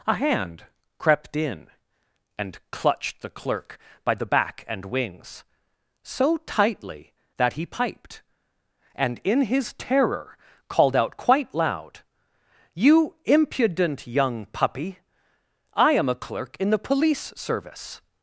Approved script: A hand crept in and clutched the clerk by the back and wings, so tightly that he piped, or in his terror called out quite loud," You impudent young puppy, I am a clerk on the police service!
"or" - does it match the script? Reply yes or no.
no